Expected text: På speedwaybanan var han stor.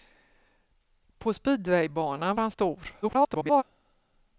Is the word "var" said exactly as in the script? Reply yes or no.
no